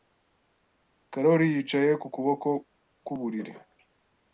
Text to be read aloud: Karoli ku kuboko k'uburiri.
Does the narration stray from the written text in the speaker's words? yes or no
yes